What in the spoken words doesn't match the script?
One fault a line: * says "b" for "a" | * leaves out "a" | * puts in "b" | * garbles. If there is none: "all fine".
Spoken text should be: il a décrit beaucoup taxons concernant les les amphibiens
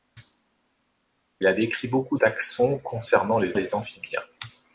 all fine